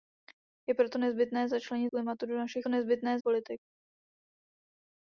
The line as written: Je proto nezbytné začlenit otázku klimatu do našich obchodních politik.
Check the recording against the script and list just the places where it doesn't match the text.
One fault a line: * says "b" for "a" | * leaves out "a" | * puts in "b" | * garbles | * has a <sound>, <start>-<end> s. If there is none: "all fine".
* leaves out "otázku"
* says "nezbytné" for "obchodních"